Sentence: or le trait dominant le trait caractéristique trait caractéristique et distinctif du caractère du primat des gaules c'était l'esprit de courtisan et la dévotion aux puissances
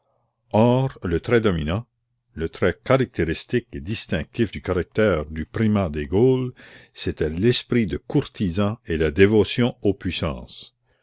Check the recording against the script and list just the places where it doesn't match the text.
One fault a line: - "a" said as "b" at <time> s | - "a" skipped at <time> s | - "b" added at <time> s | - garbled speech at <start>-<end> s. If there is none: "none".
- "trait caractéristique" skipped at 3.7 s